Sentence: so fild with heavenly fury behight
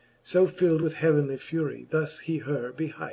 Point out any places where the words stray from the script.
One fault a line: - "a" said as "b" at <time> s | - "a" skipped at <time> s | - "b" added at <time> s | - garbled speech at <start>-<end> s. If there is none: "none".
- "thus he her" added at 1.9 s